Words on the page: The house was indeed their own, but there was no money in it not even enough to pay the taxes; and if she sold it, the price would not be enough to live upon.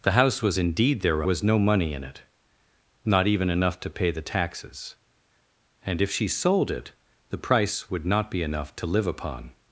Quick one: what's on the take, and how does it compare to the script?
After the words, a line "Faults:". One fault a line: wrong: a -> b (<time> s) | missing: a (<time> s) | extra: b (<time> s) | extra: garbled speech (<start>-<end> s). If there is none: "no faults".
The house was indeed their was no money in it not even enough to pay the taxes; and if she sold it, the price would not be enough to live upon.
Faults:
missing: own but there (1.2 s)